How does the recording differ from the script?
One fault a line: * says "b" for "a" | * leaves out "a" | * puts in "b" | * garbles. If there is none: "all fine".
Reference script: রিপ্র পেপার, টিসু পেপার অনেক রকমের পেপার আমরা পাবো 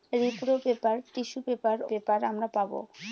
* leaves out "অনেক রকমের"